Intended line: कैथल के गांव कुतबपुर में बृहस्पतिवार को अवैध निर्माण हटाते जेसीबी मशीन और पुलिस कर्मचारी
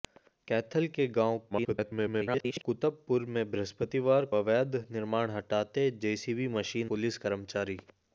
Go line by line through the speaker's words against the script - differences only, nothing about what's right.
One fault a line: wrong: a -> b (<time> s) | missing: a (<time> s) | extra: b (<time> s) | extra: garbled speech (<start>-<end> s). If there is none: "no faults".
extra: garbled speech (1.5-2.6 s)
missing: को (4.3 s)
missing: और (6.9 s)